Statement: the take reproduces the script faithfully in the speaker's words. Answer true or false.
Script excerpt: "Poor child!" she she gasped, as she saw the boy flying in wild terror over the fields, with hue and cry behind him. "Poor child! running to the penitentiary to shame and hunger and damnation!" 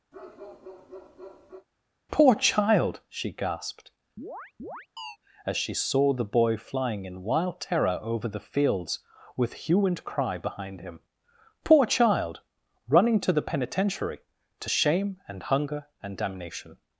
false